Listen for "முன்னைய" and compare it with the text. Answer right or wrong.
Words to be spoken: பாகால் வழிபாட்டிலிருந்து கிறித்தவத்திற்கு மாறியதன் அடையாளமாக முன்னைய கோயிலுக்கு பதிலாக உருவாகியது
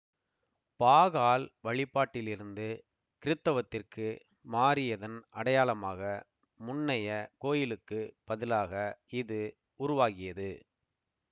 right